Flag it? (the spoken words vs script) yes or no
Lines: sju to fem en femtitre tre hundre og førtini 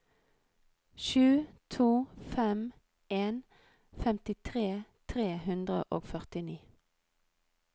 no